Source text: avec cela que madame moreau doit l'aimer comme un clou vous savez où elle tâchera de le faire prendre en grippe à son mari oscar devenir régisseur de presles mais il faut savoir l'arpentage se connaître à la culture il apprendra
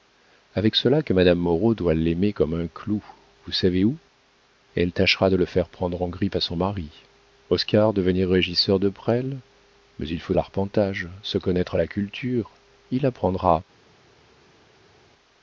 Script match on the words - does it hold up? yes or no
no